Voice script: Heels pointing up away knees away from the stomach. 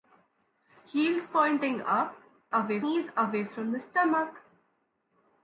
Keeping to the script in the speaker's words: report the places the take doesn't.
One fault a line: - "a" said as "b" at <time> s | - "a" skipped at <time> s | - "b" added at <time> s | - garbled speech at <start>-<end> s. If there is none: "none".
none